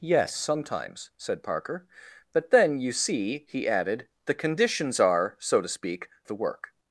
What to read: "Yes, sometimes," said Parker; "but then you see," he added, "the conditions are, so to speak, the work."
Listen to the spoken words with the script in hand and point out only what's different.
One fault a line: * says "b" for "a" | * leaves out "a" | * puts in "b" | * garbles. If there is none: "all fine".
all fine